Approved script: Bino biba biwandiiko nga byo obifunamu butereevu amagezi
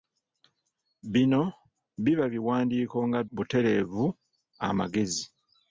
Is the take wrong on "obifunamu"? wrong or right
wrong